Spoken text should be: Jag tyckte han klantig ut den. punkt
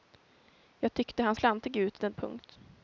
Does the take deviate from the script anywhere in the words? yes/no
no